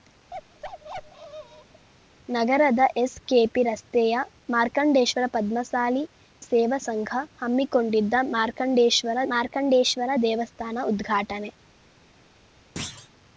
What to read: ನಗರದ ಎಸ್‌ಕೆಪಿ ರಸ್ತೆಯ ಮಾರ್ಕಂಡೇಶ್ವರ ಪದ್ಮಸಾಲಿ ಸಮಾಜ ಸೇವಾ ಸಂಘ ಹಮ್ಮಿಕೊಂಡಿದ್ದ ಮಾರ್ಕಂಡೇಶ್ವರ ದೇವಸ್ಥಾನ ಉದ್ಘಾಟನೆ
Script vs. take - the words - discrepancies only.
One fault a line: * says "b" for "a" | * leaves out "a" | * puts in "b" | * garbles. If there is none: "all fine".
* leaves out "ಸಮಾಜ"
* puts in "ಮಾರ್ಕಂಡೇಶ್ವರ"